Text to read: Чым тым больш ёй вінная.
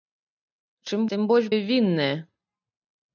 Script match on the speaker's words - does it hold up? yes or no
yes